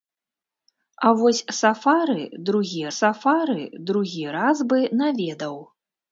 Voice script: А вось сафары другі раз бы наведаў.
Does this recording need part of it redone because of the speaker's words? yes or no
yes